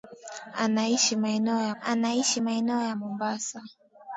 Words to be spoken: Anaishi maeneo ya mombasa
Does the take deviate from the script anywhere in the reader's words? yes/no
yes